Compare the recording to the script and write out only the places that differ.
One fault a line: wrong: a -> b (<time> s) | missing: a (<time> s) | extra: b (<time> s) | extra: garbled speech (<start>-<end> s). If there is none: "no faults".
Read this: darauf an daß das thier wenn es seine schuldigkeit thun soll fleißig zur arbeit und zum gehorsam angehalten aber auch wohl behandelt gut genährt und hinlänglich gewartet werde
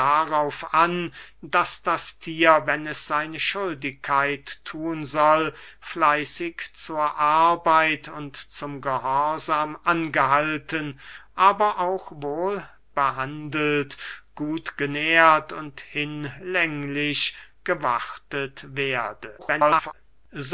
extra: garbled speech (19.4-19.9 s)